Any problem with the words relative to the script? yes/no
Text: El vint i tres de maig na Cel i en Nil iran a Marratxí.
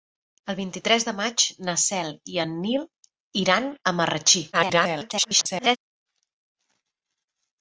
yes